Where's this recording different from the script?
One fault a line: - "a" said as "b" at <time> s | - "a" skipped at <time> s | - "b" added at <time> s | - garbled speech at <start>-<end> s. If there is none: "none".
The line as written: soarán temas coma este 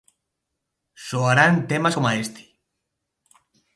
none